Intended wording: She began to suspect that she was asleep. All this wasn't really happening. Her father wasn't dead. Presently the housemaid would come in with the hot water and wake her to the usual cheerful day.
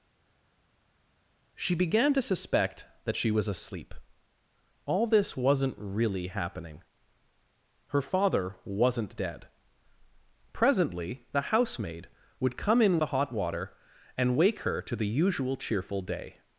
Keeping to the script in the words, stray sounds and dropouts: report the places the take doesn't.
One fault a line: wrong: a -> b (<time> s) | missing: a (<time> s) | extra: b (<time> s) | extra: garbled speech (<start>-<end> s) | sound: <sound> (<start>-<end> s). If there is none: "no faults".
missing: with (13.0 s)